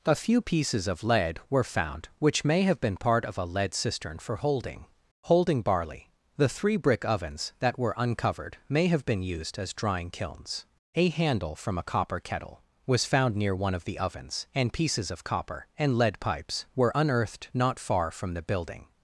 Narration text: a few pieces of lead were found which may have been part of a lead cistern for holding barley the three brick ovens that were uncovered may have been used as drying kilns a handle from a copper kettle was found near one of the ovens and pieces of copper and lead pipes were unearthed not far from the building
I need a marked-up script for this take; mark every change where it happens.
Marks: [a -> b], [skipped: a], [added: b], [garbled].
a few pieces of lead were found which may have been part of a lead cistern for holding [added: holding] barley the three brick ovens that were uncovered may have been used as drying kilns a handle from a copper kettle was found near one of the ovens and pieces of copper and lead pipes were unearthed not far from the building